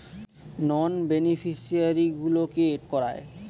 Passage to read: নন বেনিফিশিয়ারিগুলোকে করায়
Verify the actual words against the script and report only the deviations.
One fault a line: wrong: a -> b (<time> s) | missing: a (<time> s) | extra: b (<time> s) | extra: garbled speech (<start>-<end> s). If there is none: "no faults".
no faults